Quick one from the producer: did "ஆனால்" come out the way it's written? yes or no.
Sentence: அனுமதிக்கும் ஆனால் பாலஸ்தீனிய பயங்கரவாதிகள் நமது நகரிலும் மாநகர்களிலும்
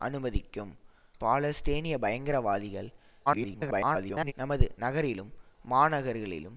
no